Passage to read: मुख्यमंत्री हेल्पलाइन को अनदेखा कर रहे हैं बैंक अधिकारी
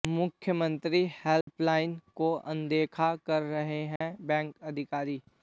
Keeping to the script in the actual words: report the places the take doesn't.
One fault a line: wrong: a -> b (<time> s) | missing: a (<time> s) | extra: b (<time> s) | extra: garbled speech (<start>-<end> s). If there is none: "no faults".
no faults